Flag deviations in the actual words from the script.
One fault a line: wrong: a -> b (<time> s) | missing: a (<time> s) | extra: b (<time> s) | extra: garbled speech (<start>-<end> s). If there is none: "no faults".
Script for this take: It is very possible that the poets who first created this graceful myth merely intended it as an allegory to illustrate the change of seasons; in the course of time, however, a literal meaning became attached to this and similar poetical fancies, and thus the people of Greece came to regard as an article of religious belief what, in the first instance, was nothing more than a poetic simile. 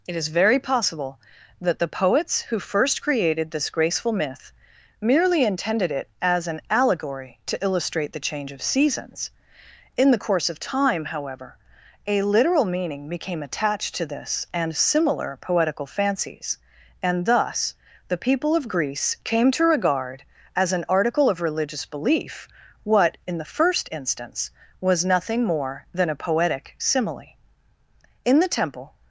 extra: In the temple (28.2 s)